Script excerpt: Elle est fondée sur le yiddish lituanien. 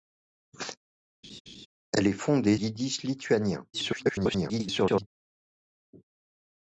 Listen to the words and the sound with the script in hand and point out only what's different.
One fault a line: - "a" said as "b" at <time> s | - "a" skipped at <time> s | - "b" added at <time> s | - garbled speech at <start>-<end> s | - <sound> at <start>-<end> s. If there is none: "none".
- laugh at 1.2-1.7 s
- "sur le" skipped at 2.6 s
- garbled speech at 3.7-5.1 s